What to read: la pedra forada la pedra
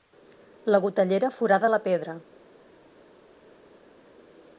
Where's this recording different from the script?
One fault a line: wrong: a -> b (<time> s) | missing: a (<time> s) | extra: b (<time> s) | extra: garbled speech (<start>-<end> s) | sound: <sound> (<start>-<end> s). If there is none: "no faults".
wrong: pedra -> gotellera (0.8 s)